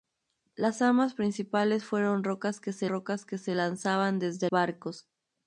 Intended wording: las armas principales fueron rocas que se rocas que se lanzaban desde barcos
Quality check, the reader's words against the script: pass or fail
pass